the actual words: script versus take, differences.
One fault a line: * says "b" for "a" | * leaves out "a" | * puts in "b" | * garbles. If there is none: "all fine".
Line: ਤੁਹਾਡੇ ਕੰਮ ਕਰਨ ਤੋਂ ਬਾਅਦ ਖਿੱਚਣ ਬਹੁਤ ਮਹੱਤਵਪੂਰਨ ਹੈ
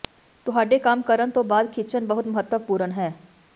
all fine